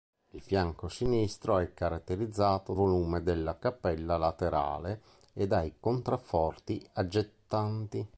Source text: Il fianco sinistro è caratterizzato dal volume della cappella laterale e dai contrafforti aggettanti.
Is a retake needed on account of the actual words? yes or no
yes